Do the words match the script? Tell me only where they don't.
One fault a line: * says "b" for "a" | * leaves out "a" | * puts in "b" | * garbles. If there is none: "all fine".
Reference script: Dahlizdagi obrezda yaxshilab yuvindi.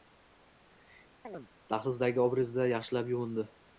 all fine